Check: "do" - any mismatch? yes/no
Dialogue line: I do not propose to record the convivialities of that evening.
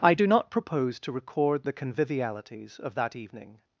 no